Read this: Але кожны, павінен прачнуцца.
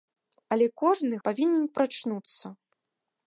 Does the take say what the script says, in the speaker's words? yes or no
yes